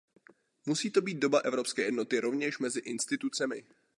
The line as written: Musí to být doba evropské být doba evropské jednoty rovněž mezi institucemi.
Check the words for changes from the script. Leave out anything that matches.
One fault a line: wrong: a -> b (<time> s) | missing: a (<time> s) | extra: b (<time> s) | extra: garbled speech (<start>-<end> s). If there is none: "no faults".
missing: být doba evropské (1.8 s)